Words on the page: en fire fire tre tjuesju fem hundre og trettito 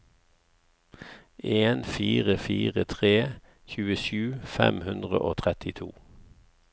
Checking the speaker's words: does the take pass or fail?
pass